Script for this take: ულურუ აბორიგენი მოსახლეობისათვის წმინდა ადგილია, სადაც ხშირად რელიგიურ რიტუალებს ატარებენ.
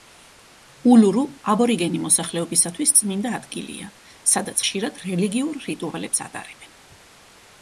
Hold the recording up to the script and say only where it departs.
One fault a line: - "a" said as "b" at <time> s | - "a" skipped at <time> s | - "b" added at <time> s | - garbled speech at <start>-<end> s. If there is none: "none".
none